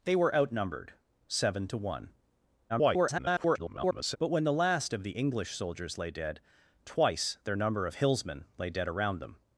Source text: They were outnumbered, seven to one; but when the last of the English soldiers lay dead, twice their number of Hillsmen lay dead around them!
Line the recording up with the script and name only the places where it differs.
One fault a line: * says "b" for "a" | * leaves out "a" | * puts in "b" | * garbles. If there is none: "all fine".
* garbles